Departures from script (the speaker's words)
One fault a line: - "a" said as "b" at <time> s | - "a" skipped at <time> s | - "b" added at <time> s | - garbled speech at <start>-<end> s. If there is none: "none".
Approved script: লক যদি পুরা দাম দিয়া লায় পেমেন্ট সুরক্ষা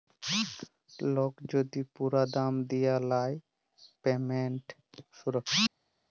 none